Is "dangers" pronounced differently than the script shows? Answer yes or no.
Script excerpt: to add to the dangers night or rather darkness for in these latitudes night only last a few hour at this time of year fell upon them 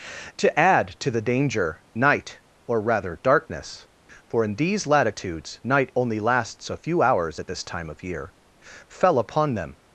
yes